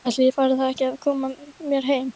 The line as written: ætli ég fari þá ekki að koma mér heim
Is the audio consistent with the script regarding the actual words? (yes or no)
yes